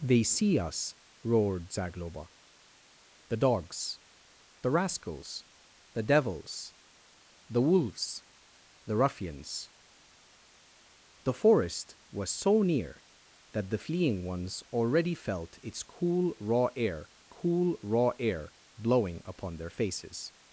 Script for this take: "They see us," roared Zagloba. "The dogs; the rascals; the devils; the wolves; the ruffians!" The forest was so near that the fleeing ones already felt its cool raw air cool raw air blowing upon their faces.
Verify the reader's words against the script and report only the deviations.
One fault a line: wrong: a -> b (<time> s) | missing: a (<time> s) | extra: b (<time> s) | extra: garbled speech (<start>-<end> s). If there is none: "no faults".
no faults